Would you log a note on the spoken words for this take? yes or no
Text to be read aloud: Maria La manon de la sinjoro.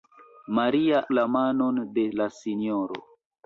no